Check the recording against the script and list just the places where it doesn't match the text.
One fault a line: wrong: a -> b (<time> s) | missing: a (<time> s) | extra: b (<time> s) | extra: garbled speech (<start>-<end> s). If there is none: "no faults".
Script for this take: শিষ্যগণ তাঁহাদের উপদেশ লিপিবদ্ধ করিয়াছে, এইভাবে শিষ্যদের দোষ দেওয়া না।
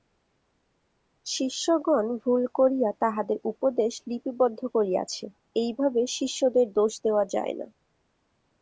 extra: ভুল করিয়া (2.2 s)
extra: যায় (7.3 s)